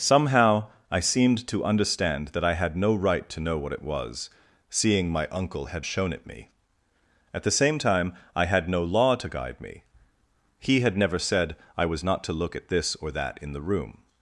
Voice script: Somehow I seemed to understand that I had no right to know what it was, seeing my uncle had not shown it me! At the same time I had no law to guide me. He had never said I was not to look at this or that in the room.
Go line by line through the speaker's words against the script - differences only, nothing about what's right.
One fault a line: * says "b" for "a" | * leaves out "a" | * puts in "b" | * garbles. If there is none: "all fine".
* leaves out "not"